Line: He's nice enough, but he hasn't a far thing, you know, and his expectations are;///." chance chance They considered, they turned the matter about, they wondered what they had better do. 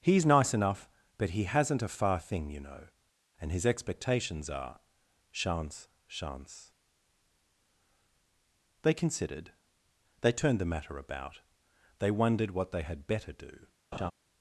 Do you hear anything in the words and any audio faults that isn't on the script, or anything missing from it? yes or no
yes